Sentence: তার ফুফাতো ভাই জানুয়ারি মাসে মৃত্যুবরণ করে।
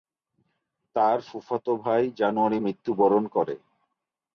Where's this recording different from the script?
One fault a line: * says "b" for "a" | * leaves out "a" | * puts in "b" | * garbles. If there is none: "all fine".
* leaves out "মাসে"